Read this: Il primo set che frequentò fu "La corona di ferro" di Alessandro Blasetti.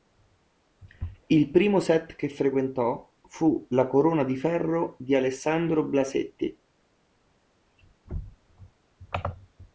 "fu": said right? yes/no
yes